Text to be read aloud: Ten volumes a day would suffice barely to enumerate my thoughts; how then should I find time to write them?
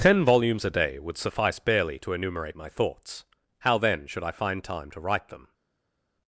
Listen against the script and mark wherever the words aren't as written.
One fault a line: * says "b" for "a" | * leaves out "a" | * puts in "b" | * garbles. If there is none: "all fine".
all fine